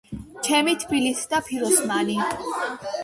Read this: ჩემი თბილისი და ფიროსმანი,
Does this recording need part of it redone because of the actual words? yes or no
no